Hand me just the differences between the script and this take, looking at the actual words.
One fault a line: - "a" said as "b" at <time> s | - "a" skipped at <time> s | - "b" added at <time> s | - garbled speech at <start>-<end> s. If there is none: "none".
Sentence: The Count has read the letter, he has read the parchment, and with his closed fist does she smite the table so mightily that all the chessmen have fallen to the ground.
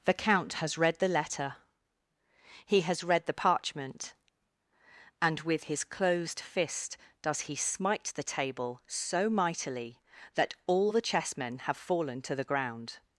- "she" said as "he" at 7.4 s